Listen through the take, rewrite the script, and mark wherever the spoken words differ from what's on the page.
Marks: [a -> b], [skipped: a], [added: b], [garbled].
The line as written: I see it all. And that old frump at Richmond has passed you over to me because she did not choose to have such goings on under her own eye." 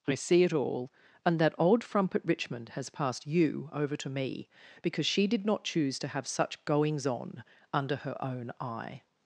I see it all. And that old frump at Richmond has passed you over to me because she did not choose to have such goings on under her own eye."